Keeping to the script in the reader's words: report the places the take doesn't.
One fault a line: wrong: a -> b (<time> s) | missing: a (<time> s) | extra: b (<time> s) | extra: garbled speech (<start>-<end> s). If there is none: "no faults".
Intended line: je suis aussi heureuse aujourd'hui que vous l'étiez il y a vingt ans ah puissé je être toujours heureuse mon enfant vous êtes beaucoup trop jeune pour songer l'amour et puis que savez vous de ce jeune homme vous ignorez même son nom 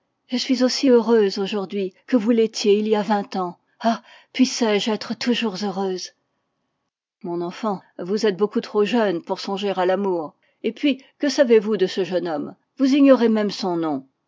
extra: à (9.8 s)